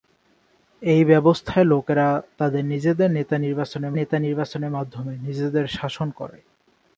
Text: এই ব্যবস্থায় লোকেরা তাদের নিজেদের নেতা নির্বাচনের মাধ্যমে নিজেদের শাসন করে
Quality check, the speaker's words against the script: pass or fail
fail